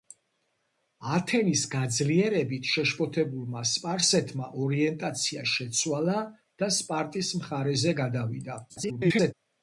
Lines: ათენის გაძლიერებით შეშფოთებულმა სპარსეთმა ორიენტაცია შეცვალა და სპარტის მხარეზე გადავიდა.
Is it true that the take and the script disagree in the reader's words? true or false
true